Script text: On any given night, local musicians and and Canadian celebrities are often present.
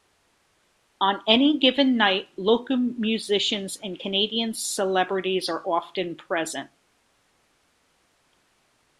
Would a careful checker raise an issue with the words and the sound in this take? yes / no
yes